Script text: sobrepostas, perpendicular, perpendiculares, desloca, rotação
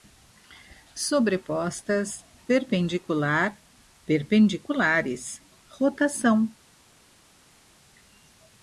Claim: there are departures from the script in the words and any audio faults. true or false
true